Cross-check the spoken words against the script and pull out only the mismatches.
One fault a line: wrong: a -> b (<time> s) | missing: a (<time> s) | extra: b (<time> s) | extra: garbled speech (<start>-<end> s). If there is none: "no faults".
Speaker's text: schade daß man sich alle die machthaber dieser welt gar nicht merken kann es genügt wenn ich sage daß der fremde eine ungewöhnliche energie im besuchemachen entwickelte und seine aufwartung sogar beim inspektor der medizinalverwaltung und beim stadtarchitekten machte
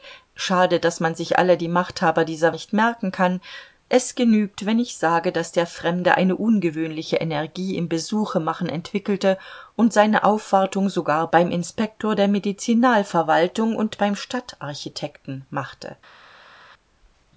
missing: welt gar (2.5 s)